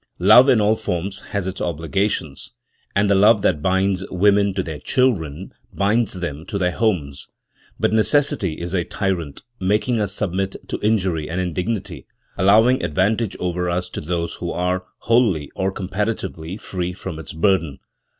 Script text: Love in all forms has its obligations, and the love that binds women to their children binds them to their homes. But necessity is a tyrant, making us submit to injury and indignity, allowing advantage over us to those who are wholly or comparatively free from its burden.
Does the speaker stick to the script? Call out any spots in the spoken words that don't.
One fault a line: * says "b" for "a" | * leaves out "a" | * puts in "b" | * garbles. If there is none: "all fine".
all fine